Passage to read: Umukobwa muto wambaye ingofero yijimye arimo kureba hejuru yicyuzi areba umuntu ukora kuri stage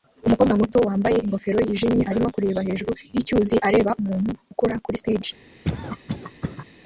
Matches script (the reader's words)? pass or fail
pass